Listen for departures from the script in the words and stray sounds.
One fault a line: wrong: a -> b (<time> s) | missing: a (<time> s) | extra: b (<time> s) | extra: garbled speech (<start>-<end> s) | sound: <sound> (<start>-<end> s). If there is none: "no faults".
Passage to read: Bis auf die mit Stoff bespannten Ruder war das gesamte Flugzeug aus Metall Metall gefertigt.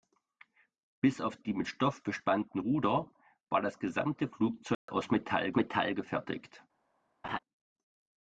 sound: dropout (4.7-4.9 s)
sound: laugh (7.2-7.4 s)